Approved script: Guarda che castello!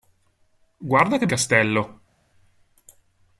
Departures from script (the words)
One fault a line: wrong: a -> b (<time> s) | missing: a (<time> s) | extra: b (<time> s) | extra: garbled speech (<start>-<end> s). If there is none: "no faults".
no faults